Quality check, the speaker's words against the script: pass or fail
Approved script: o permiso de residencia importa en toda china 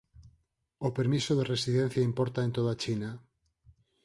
pass